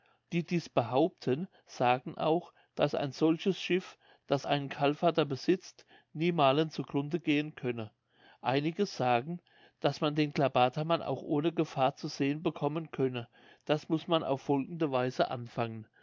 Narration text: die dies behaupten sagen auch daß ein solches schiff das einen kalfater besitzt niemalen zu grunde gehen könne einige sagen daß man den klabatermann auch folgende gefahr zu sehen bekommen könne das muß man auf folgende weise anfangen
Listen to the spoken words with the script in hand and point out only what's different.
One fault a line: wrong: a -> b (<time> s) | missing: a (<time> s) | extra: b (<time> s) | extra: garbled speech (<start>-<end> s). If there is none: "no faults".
wrong: folgende -> ohne (11.2 s)